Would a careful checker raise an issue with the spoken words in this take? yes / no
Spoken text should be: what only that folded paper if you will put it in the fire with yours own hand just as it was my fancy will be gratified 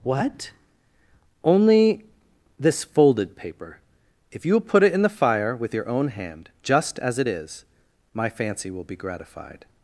yes